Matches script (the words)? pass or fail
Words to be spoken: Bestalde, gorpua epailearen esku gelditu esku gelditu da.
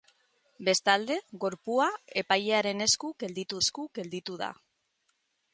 pass